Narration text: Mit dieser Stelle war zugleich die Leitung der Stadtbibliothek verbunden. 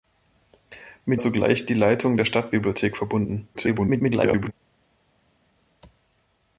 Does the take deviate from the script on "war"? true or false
true